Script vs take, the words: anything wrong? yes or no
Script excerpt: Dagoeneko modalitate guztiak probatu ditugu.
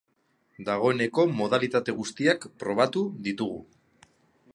no